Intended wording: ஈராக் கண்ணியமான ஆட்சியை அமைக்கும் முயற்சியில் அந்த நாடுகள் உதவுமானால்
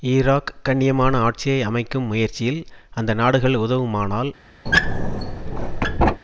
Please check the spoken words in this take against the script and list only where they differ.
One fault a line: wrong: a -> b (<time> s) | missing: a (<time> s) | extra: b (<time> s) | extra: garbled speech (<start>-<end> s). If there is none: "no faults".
no faults